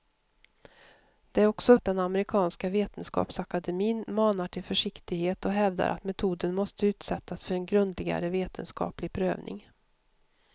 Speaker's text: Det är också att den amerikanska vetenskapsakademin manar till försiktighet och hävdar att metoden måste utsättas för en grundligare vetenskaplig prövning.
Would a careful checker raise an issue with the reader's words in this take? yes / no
no